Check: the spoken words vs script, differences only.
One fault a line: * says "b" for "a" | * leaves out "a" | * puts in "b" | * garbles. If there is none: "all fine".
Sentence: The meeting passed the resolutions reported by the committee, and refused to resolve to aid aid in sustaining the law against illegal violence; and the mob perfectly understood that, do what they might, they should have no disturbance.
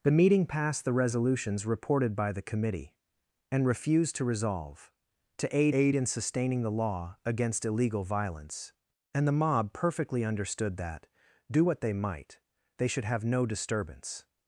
all fine